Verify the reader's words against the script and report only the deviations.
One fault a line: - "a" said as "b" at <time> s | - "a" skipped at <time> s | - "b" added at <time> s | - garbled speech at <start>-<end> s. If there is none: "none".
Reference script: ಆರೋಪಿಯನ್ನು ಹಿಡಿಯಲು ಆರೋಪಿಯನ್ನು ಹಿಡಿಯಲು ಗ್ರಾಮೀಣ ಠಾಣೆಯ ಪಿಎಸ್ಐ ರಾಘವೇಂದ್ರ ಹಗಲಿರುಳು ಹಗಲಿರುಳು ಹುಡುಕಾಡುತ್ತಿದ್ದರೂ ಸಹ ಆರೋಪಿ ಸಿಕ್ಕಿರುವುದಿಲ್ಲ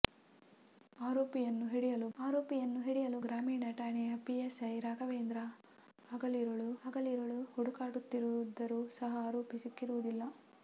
none